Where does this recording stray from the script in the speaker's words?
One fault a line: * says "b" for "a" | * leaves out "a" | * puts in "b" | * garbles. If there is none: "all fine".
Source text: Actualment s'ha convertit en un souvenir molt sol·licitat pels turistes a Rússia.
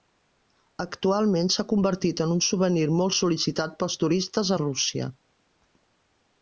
all fine